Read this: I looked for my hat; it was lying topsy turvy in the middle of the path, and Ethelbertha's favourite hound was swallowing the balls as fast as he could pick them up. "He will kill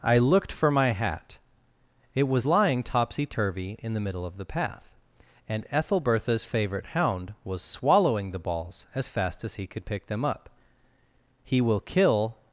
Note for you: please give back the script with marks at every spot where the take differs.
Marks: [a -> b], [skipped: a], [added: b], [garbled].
I looked for my hat; it was lying topsy turvy in the middle of the path, and Ethelbertha's favourite hound was swallowing the balls as fast as he could pick them up. "He will kill